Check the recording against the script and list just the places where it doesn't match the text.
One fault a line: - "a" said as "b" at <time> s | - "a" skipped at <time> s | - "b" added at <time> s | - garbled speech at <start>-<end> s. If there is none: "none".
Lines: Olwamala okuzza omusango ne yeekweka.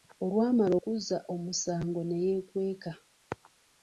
none